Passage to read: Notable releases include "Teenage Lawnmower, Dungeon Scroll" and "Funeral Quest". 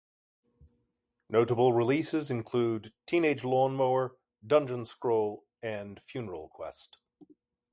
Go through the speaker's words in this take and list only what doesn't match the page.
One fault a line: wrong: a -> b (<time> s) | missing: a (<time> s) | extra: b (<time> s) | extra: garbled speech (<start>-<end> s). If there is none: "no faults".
no faults